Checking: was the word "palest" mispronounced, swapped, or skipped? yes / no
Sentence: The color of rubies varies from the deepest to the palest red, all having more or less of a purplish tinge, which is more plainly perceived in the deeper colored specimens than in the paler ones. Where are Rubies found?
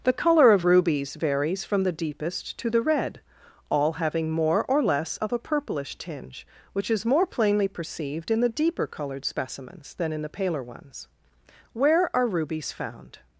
yes